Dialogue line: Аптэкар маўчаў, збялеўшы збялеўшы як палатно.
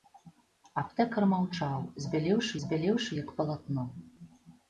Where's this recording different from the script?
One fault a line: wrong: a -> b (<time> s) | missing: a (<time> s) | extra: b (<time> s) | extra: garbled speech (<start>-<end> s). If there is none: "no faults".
no faults